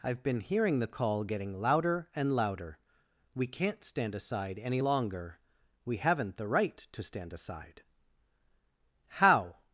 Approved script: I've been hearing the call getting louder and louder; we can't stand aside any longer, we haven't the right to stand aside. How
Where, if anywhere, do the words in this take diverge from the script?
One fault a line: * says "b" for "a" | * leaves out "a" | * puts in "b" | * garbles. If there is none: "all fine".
all fine